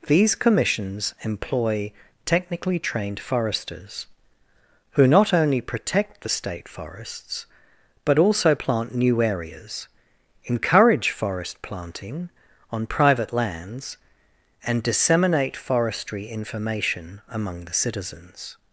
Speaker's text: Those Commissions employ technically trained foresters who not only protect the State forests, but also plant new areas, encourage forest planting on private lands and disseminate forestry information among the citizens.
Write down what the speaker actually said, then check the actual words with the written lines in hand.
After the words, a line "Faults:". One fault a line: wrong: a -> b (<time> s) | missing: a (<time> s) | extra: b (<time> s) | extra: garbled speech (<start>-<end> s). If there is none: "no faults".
These Commissions employ technically trained foresters who not only protect the State forests, but also plant new areas, encourage forest planting on private lands and disseminate forestry information among the citizens.
Faults:
wrong: Those -> These (0.1 s)